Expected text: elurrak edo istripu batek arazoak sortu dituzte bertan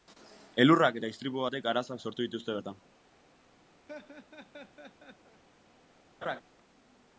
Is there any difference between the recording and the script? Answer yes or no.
yes